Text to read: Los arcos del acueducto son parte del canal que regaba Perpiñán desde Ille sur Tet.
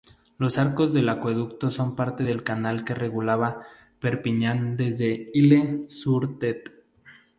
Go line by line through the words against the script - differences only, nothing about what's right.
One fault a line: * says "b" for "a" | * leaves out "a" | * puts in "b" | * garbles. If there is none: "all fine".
all fine